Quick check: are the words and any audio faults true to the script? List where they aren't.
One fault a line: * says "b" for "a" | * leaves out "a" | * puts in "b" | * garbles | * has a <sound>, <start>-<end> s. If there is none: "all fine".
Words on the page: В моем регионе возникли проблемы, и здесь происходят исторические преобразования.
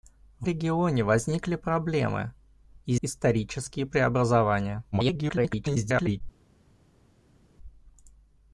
* leaves out "моем"
* leaves out "здесь происходят"
* garbles